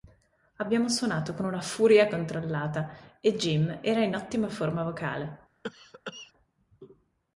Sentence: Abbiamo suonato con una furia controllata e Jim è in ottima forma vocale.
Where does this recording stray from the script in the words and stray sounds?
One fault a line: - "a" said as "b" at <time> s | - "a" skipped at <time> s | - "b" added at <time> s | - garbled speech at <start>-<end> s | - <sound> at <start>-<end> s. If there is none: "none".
- "è" said as "era" at 3.8 s
- cough at 5.6-6.3 s